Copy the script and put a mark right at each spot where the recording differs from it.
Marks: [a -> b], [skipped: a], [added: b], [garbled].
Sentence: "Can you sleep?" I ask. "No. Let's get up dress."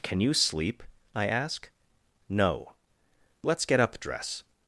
"Can you sleep?" I ask. "No. Let's get up dress."